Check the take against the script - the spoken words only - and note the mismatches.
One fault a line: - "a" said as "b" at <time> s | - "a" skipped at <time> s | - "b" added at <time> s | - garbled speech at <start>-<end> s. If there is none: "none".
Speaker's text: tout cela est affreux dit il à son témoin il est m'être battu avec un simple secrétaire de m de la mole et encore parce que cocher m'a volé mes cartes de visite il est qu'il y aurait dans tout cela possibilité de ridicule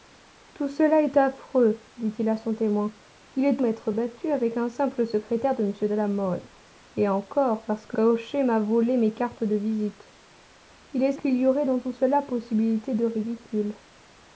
none